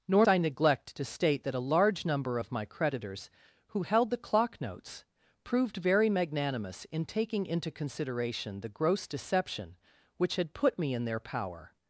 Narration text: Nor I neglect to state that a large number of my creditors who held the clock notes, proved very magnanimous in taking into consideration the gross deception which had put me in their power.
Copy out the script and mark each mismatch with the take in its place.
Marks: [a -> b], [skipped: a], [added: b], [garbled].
Nor I neglect to state that a large number of my creditors who held the clock notes, proved very magnanimous in taking into consideration the gross deception which had put me in their power.